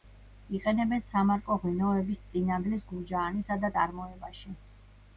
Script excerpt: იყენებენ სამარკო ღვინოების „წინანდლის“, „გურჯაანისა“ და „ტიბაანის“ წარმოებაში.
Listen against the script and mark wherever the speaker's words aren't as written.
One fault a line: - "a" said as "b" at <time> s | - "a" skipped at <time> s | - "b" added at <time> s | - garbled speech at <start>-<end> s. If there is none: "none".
- "ტიბაანის" skipped at 3.7 s